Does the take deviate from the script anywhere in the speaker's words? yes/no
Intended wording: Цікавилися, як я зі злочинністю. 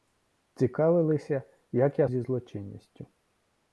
no